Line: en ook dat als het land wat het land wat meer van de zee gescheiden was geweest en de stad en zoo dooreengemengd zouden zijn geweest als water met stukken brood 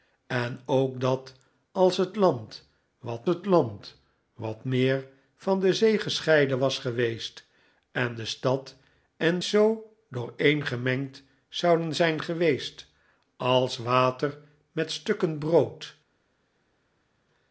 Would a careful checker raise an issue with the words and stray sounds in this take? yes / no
no